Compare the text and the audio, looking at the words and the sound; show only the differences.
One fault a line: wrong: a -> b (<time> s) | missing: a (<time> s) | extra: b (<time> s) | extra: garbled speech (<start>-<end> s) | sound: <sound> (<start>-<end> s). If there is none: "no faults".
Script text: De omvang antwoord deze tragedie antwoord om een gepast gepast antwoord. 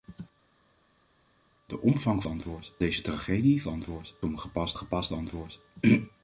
no faults